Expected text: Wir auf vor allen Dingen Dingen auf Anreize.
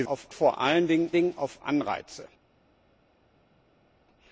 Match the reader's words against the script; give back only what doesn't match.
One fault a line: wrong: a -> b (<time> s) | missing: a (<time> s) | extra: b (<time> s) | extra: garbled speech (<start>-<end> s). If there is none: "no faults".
no faults